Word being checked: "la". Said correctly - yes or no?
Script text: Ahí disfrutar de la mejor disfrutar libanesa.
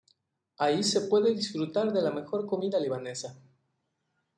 yes